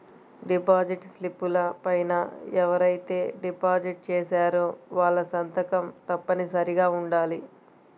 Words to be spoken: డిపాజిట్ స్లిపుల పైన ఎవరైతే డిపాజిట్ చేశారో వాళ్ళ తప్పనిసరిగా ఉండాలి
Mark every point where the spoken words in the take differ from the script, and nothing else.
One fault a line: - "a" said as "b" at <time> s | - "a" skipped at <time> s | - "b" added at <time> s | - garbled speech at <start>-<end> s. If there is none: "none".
- "సంతకం" added at 5.3 s